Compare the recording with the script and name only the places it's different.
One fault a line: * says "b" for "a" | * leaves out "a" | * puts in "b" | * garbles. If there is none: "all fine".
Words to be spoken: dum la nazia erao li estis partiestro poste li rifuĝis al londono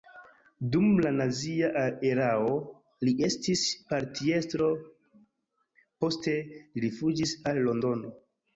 all fine